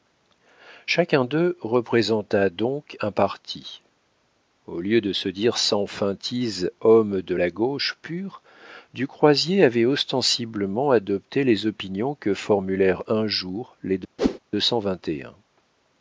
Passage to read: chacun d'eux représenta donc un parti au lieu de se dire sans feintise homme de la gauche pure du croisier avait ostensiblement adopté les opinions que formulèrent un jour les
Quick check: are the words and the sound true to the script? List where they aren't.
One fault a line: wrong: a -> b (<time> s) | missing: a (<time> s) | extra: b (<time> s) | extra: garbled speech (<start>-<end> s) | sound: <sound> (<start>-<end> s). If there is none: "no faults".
sound: whoosh (14.2-14.4 s)